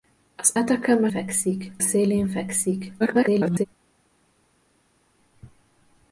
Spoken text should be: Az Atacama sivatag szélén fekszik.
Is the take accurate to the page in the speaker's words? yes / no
no